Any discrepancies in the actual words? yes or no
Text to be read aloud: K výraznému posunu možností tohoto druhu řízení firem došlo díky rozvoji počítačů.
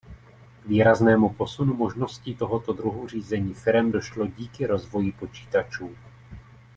no